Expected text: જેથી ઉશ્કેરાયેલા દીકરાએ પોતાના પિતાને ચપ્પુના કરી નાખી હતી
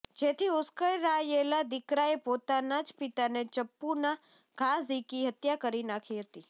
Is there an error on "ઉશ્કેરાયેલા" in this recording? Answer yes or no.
no